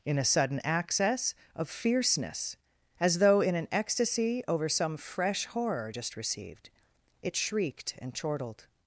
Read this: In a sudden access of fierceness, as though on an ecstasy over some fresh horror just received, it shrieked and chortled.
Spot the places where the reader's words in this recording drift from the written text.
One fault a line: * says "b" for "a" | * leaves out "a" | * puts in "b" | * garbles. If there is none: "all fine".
* says "in" for "on"